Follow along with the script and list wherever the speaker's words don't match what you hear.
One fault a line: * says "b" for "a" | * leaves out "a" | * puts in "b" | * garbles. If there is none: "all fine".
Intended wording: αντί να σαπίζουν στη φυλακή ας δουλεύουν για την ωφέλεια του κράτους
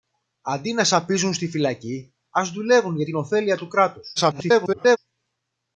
* garbles